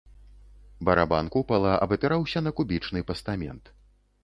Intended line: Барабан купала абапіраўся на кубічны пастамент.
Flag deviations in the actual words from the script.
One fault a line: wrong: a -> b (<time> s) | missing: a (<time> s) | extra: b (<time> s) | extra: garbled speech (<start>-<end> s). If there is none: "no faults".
no faults